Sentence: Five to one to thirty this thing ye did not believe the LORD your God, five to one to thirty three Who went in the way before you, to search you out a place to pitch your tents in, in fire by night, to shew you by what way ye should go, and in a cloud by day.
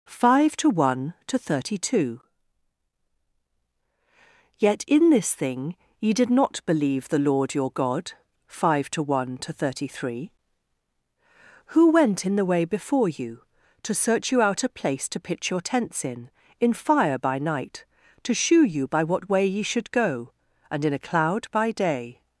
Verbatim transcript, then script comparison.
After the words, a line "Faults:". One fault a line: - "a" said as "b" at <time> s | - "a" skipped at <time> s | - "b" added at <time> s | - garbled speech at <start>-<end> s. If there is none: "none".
Five to one to thirty two Yet in this thing ye did not believe the LORD your God, five to one to thirty three Who went in the way before you, to search you out a place to pitch your tents in, in fire by night, to shew you by what way ye should go, and in a cloud by day.
Faults:
- "two Yet in" added at 1.9 s